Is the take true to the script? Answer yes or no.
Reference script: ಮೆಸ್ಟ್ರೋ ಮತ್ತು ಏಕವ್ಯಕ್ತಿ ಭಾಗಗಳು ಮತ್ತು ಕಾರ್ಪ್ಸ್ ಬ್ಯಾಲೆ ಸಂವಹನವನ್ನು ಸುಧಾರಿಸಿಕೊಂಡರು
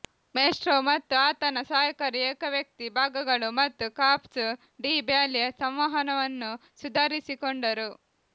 no